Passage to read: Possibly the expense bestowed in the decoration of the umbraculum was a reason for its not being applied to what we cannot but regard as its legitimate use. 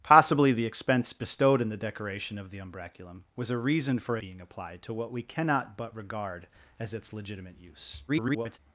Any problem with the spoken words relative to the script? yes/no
yes